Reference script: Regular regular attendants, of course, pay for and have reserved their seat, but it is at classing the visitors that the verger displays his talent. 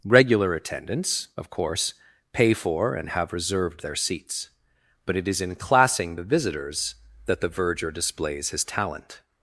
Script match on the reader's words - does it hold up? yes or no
no